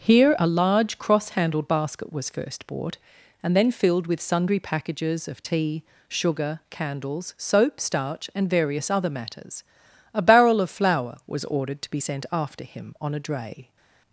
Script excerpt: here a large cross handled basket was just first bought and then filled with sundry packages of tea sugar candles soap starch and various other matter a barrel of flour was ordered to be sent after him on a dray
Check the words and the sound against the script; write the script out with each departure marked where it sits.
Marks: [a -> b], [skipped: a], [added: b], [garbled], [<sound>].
here a large cross handled basket was [skipped: just] first bought and then filled with sundry packages of tea sugar candles soap starch and various other [matter -> matters] a barrel of flour was ordered to be sent after him on a dray